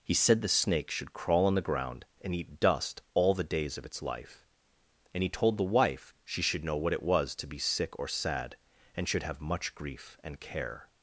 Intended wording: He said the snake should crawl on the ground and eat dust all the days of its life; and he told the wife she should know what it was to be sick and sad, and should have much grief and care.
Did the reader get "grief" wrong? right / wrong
right